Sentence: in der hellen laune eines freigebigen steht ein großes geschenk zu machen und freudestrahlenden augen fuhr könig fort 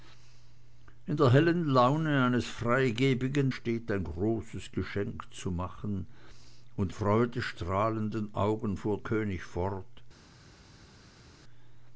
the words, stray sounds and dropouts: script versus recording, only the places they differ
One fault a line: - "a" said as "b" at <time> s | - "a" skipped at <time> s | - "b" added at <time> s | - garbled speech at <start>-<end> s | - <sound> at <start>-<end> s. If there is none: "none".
none